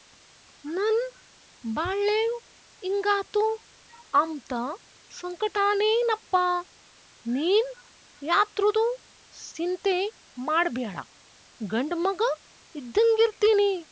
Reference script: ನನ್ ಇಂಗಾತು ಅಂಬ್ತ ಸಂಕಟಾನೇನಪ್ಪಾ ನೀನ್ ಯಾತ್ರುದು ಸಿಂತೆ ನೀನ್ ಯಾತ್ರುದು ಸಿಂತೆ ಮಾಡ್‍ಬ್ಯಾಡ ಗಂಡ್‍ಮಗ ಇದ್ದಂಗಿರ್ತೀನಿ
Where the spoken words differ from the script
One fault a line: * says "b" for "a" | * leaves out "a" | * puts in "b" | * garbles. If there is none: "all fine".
* puts in "ಬಾಳ್ಳೇವ್"
* leaves out "ನೀನ್ ಯಾತ್ರುದು ಸಿಂತೆ"